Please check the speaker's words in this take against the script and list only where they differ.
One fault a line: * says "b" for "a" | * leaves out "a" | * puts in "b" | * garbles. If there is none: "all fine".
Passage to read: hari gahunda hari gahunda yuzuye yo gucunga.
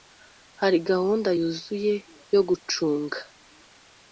* leaves out "hari gahunda"